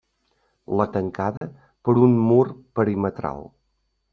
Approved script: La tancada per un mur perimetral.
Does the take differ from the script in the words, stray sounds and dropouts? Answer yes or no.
yes